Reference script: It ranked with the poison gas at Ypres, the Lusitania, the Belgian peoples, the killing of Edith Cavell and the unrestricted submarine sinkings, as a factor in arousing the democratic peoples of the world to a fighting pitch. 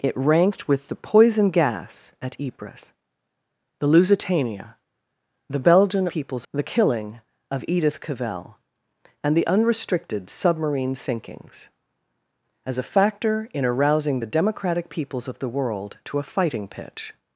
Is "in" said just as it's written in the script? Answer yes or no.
yes